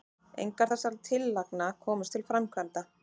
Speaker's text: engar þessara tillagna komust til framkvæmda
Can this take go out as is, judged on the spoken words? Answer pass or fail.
pass